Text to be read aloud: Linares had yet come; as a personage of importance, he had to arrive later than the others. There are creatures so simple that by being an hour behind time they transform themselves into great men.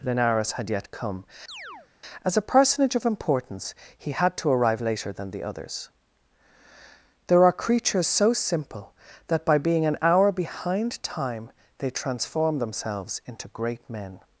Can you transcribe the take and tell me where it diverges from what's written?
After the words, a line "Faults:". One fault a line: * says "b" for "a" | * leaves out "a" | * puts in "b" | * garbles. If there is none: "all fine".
Linares had yet come; as a personage of importance, he had to arrive later than the others. There are creatures so simple that by being an hour behind time they transform themselves into great men.
Faults:
all fine